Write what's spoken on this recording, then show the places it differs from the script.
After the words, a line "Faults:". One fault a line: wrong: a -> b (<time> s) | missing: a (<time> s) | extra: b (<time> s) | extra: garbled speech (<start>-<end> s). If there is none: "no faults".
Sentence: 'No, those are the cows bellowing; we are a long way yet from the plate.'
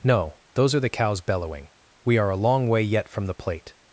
'No, those are the cows bellowing; we are a long way yet from the plate.'
Faults:
no faults